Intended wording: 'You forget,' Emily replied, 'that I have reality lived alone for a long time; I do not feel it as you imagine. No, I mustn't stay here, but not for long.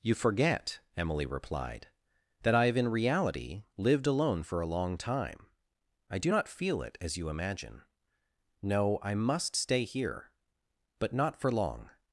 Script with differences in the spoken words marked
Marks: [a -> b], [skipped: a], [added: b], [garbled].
'You forget,' Emily replied, 'that I have [added: in] reality lived alone for a long time; I do not feel it as you imagine. No, I [mustn't -> must] stay here, but not for long.